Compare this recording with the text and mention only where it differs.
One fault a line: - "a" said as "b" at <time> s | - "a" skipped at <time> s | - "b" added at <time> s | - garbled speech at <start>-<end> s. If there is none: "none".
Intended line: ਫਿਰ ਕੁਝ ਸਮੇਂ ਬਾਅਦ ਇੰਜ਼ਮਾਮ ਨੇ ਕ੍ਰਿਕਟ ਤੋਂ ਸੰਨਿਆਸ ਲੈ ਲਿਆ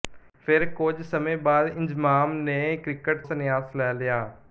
- "ਤੋਂ" skipped at 3.2 s